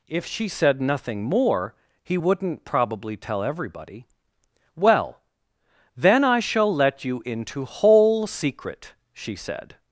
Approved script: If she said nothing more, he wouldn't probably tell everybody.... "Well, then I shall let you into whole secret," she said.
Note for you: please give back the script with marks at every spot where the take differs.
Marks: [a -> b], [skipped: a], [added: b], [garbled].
If she said nothing more, he wouldn't probably tell everybody.... "Well, then I shall let you into whole secret," she said.